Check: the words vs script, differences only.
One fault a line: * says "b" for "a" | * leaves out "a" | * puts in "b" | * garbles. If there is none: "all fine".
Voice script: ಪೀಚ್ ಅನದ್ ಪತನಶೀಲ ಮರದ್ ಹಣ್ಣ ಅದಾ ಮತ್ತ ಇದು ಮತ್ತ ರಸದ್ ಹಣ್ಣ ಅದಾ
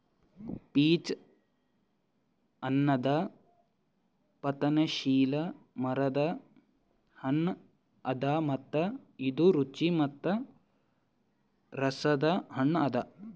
* puts in "ರುಚಿ"